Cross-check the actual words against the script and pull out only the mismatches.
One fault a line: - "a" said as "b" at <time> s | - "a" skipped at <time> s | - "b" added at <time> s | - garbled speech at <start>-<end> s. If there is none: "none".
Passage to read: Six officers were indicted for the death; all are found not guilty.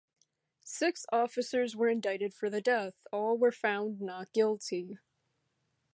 - "are" said as "were" at 3.4 s